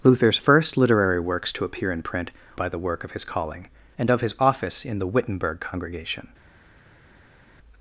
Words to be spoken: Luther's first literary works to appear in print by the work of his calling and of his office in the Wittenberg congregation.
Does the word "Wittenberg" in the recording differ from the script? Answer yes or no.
no